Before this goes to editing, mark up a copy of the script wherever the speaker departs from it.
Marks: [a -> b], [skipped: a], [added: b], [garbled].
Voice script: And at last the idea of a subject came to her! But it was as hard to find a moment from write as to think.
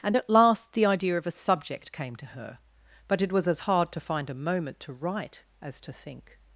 And at last the idea of a subject came to her! But it was as hard to find a moment [from -> to] write as to think.